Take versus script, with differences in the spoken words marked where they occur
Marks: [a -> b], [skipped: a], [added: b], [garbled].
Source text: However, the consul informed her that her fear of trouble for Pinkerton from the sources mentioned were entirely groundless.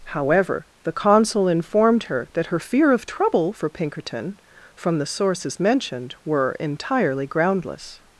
However, the consul informed her that her fear of trouble for Pinkerton from the sources mentioned were entirely groundless.